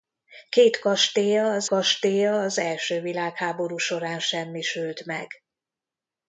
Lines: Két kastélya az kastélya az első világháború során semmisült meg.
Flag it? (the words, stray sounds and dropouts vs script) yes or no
no